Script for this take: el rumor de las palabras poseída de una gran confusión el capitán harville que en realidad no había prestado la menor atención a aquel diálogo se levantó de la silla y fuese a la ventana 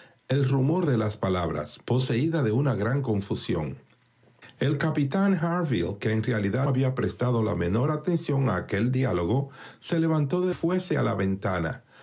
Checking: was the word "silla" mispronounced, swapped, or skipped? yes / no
yes